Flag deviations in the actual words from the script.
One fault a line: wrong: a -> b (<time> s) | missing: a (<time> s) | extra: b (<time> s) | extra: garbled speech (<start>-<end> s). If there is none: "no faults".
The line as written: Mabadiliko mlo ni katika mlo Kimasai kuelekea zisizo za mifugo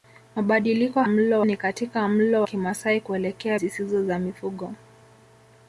no faults